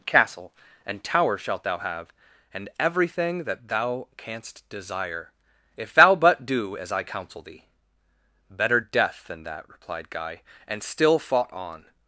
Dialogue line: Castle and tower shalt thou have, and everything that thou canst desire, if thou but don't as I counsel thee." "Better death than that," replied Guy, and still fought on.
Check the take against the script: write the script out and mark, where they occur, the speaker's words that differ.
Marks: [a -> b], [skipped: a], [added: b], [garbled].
Castle and tower shalt thou have, and everything that thou canst desire, if thou but [don't -> do] as I counsel thee." "Better death than that," replied Guy, and still fought on.